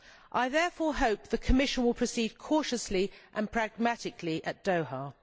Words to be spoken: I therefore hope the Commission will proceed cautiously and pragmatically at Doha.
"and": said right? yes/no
yes